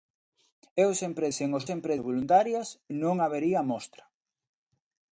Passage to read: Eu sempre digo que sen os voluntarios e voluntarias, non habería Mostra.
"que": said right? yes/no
no